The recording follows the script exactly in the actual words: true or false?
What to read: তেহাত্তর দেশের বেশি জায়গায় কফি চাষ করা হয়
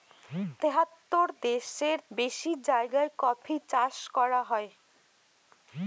true